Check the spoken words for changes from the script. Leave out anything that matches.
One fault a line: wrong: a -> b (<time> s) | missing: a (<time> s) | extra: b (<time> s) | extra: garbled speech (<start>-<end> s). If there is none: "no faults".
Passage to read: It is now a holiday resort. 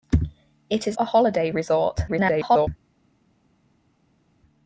missing: now (1.0 s)
extra: garbled speech (2.1-2.7 s)